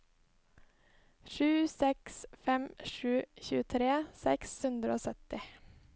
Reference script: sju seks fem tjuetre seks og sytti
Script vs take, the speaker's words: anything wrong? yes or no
yes